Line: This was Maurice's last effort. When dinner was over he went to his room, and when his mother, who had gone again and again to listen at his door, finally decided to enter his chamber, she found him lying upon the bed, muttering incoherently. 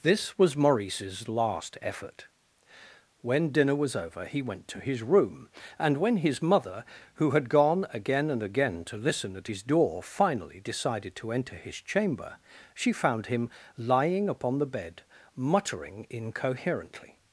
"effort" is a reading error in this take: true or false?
false